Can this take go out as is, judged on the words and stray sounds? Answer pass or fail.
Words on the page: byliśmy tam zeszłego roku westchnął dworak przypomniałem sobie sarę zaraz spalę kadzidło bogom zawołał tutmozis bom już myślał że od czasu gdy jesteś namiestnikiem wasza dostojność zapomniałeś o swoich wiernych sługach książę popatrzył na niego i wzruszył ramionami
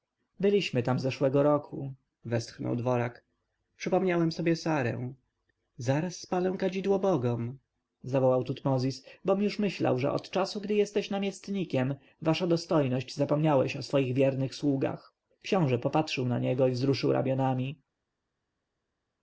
pass